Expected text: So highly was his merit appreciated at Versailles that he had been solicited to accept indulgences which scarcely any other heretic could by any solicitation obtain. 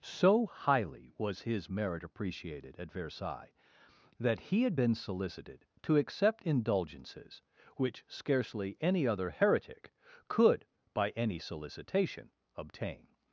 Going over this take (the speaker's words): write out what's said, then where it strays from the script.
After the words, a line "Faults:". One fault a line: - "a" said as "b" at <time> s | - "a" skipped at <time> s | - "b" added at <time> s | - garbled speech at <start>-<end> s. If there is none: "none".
So highly was his merit appreciated at Versailles that he had been solicited to accept indulgences which scarcely any other heretic could by any solicitation obtain.
Faults:
none